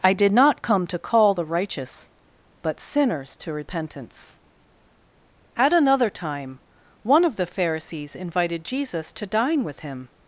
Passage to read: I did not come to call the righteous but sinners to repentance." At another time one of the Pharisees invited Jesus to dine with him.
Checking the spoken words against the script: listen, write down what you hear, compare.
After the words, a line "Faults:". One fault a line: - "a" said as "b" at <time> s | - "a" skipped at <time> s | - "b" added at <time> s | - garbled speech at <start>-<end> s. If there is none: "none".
I did not come to call the righteous but sinners to repentance." At another time one of the Pharisees invited Jesus to dine with him.
Faults:
none